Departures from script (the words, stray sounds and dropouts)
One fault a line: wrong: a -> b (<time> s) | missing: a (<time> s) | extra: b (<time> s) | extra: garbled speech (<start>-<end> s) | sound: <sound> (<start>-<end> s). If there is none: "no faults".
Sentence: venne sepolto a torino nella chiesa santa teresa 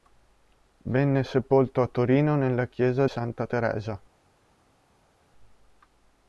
no faults